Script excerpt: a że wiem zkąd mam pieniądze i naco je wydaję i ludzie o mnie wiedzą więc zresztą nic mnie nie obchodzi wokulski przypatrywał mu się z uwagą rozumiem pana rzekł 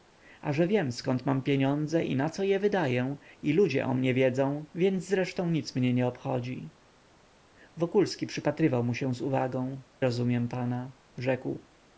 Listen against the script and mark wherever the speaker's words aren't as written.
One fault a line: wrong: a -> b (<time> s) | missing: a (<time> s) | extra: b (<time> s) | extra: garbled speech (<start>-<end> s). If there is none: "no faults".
no faults